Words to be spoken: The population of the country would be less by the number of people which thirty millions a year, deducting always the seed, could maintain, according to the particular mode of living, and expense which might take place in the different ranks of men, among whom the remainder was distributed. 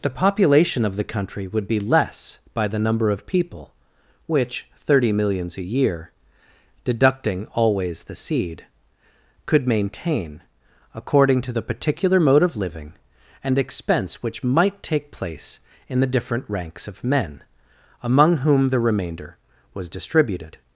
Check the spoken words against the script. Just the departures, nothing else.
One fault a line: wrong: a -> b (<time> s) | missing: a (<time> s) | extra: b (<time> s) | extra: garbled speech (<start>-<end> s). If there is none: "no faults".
no faults